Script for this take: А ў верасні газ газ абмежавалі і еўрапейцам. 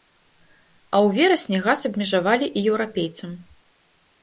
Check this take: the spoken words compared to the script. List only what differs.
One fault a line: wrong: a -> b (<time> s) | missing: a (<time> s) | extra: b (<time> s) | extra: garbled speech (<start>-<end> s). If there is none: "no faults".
missing: газ (1.9 s)